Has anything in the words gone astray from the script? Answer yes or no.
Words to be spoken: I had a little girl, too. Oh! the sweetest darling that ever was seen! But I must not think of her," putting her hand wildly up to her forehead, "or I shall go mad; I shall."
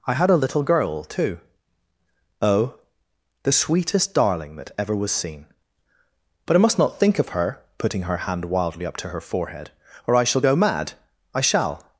no